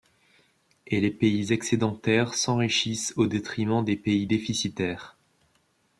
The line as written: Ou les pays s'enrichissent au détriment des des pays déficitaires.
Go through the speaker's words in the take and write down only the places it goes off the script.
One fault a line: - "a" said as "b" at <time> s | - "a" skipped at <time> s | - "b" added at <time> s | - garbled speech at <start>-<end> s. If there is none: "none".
- "Ou" said as "Et" at 0.9 s
- "excédentaires" added at 1.5 s
- "des" skipped at 4.0 s